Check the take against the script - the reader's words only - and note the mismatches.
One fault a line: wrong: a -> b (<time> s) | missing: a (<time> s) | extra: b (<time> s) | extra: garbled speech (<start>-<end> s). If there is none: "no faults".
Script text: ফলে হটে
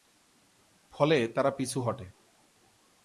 extra: তারা পিছু (1.3 s)